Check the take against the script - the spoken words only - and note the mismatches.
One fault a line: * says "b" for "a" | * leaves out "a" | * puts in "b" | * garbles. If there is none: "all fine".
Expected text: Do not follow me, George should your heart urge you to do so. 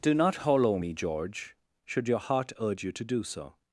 * says "hollow" for "follow"